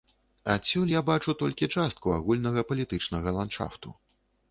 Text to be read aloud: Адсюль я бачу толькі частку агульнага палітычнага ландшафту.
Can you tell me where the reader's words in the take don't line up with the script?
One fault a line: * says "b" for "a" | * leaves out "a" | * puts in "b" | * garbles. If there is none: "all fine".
all fine